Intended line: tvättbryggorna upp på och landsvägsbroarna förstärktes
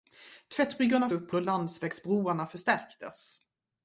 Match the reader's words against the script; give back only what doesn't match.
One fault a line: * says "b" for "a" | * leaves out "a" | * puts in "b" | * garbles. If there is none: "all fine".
all fine